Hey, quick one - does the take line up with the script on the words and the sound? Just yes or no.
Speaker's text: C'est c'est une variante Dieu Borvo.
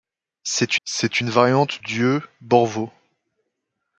yes